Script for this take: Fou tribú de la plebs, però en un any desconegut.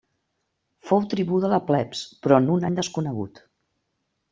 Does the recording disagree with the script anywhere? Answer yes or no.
no